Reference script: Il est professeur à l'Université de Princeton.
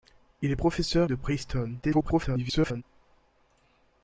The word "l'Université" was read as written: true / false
false